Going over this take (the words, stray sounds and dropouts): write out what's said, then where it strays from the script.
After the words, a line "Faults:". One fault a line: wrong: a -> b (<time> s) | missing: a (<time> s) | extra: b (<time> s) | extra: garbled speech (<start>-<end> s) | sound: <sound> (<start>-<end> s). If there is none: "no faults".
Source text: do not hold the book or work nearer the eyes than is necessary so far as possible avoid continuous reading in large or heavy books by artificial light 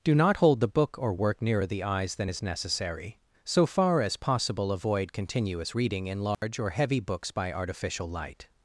do not hold the book or work nearer the eyes than is necessary so far as possible avoid continuous reading in large or heavy books by artificial light
Faults:
sound: dropout (6.3-6.4 s)